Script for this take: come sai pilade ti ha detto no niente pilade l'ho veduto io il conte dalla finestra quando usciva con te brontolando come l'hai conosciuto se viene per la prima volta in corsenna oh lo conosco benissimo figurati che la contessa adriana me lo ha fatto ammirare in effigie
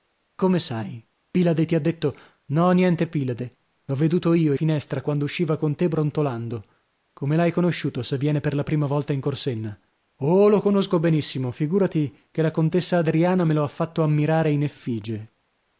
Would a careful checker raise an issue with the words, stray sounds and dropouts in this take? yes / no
yes